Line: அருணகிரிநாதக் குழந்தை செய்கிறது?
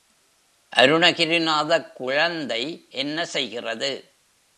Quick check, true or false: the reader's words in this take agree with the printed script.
false